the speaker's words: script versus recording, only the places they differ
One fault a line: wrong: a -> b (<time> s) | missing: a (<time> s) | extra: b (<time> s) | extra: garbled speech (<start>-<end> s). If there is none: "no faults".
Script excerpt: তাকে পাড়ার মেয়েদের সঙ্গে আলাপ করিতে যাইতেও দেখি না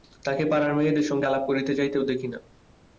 no faults